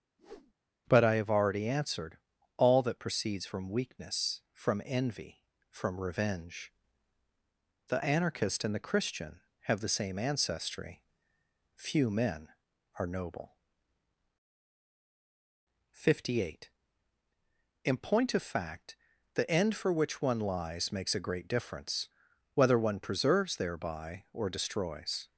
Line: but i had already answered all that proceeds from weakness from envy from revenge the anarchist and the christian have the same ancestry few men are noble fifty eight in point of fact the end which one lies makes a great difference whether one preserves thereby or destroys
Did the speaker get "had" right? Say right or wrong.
wrong